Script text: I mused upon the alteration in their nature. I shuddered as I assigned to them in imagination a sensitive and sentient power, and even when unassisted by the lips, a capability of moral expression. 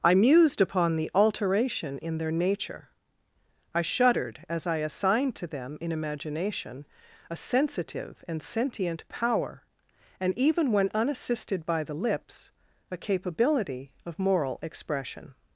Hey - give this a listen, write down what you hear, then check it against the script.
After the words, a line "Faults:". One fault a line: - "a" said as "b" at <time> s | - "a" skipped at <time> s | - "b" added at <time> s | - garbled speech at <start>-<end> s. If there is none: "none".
I mused upon the alteration in their nature. I shuddered as I assigned to them in imagination a sensitive and sentient power, and even when unassisted by the lips, a capability of moral expression.
Faults:
none